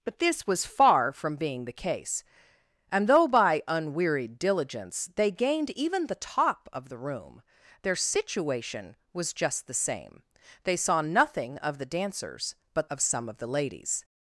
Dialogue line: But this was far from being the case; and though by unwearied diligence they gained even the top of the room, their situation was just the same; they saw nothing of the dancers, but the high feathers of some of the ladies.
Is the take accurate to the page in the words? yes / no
no